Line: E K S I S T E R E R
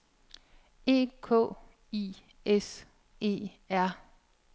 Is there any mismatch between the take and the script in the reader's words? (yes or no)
yes